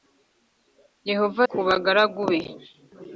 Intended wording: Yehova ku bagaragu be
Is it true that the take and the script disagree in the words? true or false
false